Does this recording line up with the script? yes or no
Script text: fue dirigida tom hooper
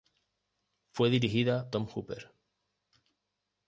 yes